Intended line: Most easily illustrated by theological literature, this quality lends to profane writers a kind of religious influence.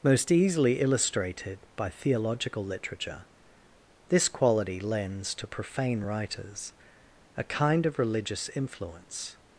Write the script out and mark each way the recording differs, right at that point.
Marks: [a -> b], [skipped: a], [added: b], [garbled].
Most easily illustrated by theological literature, this quality lends to profane writers a kind of religious influence.